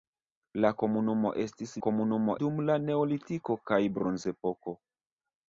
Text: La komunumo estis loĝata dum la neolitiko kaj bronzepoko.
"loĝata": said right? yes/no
no